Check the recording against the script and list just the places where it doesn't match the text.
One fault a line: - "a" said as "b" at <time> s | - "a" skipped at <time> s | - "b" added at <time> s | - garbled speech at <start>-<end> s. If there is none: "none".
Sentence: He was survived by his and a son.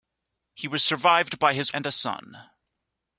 none